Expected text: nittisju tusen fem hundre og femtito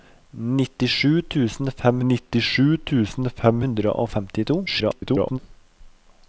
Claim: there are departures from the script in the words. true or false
true